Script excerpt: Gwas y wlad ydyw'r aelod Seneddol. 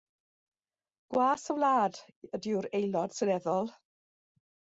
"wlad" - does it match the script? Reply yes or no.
yes